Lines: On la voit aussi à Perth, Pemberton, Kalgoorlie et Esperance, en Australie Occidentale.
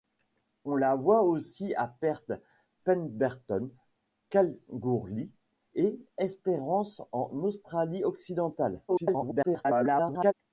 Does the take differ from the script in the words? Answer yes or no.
yes